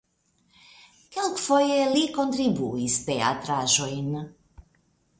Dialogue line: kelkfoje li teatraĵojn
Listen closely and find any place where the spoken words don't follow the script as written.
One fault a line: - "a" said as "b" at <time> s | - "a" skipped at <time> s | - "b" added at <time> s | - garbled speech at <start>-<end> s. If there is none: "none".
- "kontribuis" added at 2.2 s